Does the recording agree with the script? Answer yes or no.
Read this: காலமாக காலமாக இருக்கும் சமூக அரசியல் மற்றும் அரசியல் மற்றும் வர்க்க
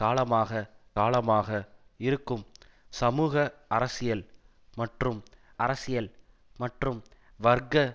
yes